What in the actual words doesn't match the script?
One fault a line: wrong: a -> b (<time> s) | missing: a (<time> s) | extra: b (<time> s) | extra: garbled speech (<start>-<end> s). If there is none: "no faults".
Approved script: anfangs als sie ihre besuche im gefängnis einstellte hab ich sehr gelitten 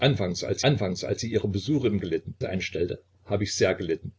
extra: anfangs als (0.6 s)
wrong: gefängnis -> gelitten (2.0 s)